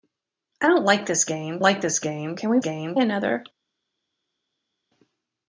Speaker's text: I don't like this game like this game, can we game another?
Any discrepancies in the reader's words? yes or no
no